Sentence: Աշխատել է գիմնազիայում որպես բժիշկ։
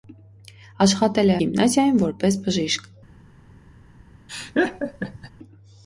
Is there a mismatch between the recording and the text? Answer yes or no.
no